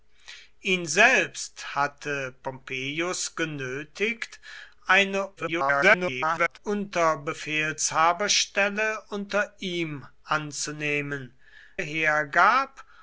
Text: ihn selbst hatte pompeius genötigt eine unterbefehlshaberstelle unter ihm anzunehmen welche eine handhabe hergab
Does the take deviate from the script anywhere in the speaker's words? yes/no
yes